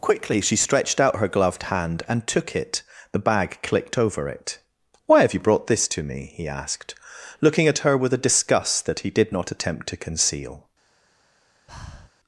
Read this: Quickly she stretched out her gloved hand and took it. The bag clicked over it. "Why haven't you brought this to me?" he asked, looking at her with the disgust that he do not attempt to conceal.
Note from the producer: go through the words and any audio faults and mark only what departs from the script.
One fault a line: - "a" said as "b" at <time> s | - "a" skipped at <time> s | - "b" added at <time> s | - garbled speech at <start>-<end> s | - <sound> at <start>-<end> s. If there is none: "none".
- "haven't" said as "have" at 5.2 s
- "the" said as "a" at 8.1 s
- "do" said as "did" at 9.1 s
- breath at 11.7-12.1 s